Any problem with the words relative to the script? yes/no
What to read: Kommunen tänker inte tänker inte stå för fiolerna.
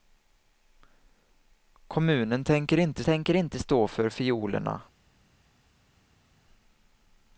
no